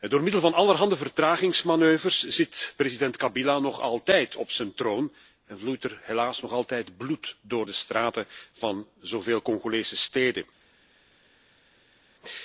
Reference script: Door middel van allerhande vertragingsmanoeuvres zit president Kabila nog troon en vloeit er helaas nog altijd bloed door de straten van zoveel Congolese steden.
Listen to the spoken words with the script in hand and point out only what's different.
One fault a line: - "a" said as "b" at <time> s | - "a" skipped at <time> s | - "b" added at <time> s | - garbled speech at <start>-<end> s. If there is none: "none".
- "altijd op zijn" added at 3.8 s